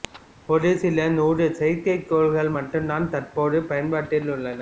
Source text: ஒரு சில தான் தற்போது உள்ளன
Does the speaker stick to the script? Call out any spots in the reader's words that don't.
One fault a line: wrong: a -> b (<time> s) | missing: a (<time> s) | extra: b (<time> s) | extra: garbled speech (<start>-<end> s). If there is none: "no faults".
extra: நூறு செயற்கைக்கோள்கள் மட்டும் (1.1 s)
extra: பயன்பாட்டில் (3.7 s)